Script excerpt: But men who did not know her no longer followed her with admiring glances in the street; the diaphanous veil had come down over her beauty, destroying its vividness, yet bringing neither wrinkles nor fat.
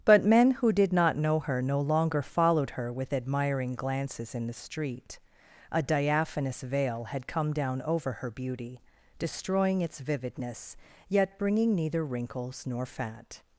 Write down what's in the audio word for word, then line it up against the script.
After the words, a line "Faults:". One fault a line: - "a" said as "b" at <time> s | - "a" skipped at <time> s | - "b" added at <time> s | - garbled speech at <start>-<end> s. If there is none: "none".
But men who did not know her no longer followed her with admiring glances in the street; a diaphanous veil had come down over her beauty, destroying its vividness, yet bringing neither wrinkles nor fat.
Faults:
- "the" said as "a" at 5.7 s